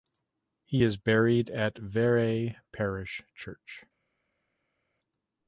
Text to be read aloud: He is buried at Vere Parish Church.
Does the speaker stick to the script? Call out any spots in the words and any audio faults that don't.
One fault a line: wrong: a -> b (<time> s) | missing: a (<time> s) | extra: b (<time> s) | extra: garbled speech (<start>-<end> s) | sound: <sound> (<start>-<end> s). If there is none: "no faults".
no faults